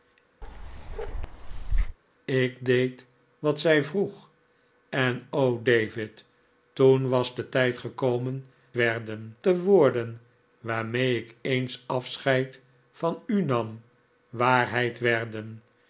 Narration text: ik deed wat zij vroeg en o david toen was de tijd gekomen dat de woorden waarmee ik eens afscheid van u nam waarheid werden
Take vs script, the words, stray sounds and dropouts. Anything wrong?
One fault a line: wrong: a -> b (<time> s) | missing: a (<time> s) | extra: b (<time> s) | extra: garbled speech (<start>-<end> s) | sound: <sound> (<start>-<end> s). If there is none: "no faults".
sound: bark (0.4-2.0 s)
wrong: dat -> werden (8.7 s)